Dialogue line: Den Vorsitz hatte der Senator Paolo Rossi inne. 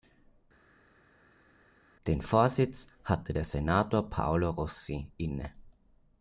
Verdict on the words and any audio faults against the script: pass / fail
pass